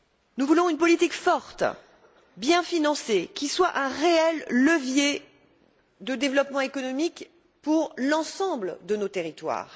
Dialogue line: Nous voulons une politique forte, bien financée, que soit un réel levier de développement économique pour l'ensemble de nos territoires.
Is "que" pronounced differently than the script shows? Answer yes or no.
yes